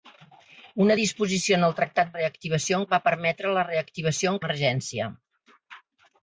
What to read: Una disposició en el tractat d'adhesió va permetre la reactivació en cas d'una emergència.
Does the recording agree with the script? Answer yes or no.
no